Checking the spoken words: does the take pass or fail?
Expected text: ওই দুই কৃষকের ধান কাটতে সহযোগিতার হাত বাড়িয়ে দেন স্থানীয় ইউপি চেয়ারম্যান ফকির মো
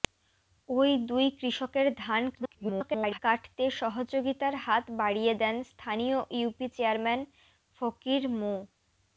fail